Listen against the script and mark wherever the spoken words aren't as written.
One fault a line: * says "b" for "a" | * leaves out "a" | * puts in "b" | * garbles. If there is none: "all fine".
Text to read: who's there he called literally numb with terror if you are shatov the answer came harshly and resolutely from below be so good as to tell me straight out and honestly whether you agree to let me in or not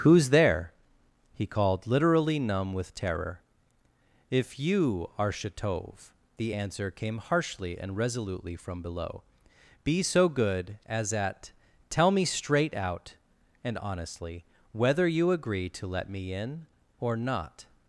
* says "at" for "to"